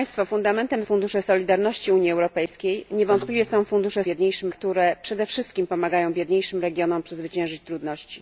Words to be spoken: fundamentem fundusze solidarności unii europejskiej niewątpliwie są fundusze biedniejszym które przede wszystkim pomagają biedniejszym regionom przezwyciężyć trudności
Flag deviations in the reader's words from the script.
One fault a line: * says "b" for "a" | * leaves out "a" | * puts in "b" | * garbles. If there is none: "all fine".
all fine